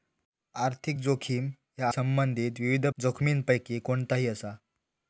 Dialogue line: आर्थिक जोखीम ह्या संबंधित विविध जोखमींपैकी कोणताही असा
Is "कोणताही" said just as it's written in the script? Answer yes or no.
yes